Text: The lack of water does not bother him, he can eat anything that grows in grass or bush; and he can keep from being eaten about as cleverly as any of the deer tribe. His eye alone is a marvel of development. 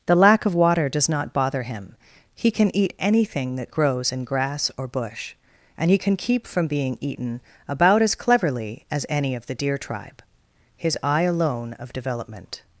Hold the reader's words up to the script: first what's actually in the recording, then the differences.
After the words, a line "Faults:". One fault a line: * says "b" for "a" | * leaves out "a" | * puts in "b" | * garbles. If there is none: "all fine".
The lack of water does not bother him, he can eat anything that grows in grass or bush; and he can keep from being eaten about as cleverly as any of the deer tribe. His eye alone of development.
Faults:
* leaves out "is a marvel"